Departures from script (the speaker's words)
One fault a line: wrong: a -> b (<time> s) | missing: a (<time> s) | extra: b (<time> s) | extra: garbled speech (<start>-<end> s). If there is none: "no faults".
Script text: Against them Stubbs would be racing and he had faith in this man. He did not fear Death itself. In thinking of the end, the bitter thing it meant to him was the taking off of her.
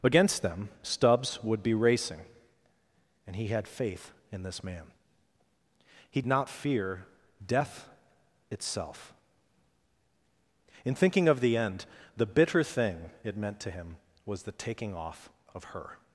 missing: did (6.2 s)